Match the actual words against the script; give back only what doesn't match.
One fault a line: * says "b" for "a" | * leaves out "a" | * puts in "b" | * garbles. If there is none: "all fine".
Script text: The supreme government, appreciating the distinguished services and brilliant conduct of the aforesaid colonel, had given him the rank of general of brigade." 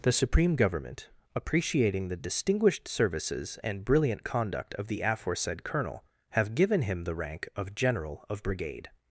* says "have" for "had"